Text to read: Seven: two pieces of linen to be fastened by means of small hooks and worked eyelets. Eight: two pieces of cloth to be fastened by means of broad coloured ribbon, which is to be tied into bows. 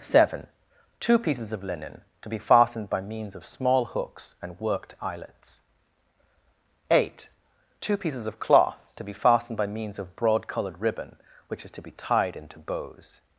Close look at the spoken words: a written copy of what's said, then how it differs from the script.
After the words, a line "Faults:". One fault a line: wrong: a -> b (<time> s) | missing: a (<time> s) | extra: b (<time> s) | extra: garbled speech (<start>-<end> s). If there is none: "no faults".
Seven: two pieces of linen to be fastened by means of small hooks and worked eyelets. Eight: two pieces of cloth to be fastened by means of broad coloured ribbon, which is to be tied into bows.
Faults:
no faults